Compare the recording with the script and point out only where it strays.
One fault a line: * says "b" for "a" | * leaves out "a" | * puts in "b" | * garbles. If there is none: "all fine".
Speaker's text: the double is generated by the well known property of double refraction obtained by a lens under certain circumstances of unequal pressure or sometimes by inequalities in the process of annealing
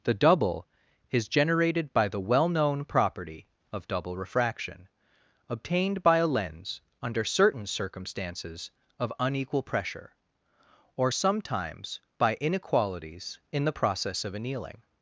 all fine